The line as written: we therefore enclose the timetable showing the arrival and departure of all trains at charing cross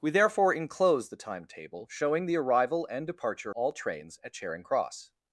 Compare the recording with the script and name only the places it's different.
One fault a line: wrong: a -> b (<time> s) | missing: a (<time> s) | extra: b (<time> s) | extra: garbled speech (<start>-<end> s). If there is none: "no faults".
no faults